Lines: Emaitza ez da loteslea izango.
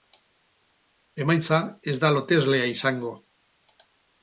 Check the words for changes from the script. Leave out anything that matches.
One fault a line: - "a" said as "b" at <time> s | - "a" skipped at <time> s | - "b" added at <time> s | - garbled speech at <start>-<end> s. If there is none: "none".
none